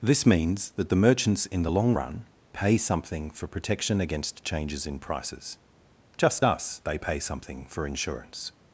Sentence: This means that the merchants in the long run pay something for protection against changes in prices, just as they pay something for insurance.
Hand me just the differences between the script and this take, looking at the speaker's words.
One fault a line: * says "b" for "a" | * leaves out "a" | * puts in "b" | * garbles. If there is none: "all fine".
* says "us" for "as"